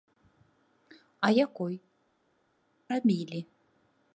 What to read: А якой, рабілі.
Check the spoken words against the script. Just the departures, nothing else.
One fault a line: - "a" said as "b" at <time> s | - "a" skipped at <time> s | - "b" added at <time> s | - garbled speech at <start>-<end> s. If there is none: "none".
none